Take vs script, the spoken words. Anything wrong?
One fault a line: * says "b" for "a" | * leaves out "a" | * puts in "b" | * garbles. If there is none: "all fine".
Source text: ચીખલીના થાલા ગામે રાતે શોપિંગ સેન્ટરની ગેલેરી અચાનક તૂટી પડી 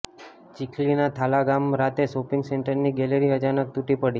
all fine